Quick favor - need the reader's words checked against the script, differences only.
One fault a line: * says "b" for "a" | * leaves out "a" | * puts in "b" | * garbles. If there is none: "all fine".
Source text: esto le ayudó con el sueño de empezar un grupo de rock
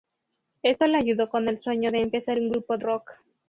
* leaves out "de"